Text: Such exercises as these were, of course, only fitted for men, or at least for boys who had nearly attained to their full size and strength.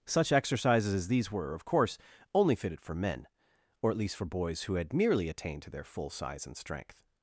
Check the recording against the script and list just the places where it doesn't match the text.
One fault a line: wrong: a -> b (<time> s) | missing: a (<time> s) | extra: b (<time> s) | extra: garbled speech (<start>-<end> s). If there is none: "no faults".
wrong: nearly -> merely (4.9 s)